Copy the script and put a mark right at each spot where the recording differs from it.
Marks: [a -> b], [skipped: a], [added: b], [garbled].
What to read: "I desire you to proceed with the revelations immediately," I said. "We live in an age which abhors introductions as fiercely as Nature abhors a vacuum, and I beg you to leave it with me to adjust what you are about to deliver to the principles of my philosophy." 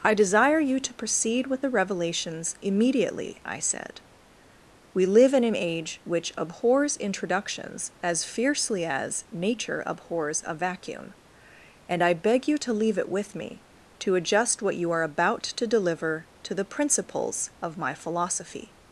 "I desire you to proceed with the revelations immediately," I said. "We live in an age which abhors introductions as fiercely as Nature abhors a vacuum, and I beg you to leave it with me to adjust what you are about to deliver to the principles of my philosophy."